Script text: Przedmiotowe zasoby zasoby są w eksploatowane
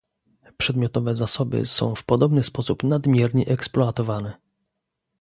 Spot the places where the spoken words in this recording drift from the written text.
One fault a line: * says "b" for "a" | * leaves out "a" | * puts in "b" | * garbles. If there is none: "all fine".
* leaves out "zasoby"
* puts in "podobny sposób nadmiernie"